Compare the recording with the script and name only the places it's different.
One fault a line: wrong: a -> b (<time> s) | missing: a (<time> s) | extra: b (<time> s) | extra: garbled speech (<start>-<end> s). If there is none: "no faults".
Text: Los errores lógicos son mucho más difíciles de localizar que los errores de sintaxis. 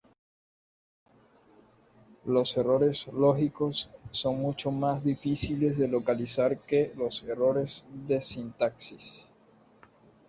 no faults